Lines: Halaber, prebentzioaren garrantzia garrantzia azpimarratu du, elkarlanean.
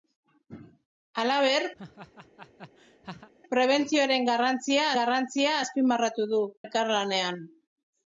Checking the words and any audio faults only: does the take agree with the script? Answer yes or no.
no